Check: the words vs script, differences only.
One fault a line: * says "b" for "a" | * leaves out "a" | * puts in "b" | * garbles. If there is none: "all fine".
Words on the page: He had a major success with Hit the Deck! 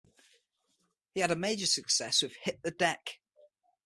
all fine